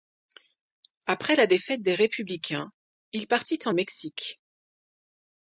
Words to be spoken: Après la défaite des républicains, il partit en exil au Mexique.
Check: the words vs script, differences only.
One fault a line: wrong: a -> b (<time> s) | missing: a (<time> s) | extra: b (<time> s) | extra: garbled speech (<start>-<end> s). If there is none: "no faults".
missing: exil (3.8 s)